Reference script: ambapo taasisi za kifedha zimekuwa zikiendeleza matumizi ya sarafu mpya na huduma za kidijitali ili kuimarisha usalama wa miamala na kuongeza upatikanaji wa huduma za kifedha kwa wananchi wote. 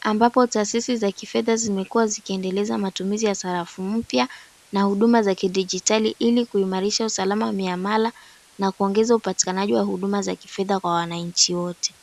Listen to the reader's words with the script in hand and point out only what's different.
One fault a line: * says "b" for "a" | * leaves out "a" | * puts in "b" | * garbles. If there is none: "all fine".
all fine